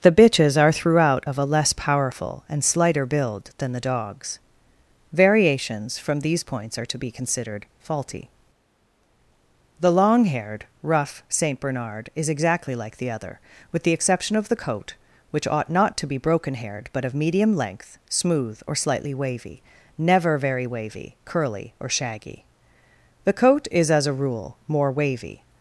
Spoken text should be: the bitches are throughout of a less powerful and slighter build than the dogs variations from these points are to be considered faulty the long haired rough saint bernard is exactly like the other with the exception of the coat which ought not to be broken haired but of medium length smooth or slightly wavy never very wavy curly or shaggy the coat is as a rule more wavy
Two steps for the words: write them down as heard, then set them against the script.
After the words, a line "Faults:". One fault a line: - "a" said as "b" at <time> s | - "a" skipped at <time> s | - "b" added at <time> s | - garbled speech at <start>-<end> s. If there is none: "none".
the bitches are throughout of a less powerful and slighter build than the dogs variations from these points are to be considered faulty the long haired rough saint bernard is exactly like the other with the exception of the coat which ought not to be broken haired but of medium length smooth or slightly wavy never very wavy curly or shaggy the coat is as a rule more wavy
Faults:
none